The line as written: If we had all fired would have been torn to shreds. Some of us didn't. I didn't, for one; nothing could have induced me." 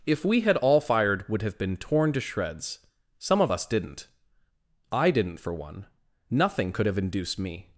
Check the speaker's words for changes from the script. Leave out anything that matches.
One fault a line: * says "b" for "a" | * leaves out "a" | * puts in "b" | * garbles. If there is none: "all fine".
all fine